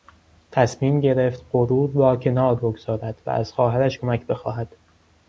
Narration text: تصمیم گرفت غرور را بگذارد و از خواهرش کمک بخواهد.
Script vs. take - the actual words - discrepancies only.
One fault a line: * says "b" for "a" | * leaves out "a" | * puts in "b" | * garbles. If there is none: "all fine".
* puts in "کنار"